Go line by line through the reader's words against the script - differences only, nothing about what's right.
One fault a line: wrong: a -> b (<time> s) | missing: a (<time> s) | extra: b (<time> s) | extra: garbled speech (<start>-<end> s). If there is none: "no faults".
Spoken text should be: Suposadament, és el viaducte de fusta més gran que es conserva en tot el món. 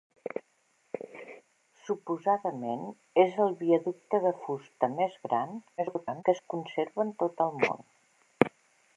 extra: garbled speech (5.8-6.2 s)